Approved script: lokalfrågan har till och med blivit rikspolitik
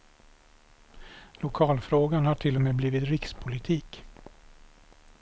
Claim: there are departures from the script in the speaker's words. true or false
false